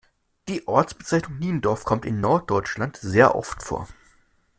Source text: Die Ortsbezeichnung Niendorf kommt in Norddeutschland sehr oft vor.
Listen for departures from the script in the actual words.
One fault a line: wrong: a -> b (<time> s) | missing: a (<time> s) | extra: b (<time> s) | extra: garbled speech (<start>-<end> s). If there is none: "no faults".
no faults